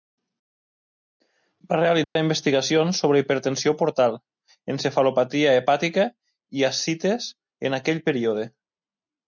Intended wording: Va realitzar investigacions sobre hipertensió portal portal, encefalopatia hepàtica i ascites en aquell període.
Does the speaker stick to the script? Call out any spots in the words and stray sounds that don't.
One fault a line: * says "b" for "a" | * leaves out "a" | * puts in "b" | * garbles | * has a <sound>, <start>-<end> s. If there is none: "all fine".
* has a dropout, 2.0-2.2 s
* leaves out "portal"